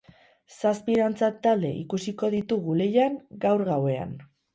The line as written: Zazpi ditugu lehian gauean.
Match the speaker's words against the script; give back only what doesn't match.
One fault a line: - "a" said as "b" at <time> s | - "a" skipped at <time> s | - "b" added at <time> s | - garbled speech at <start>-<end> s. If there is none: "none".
- "dantza talde ikusiko" added at 1.0 s
- "gaur" added at 3.5 s